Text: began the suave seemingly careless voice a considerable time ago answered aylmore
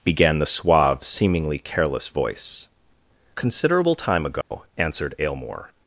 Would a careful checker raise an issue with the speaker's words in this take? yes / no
yes